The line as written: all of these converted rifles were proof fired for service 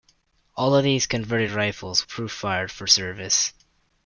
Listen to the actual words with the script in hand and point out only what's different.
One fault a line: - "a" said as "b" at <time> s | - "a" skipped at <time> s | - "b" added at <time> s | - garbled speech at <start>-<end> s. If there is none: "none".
- "were" skipped at 2.1 s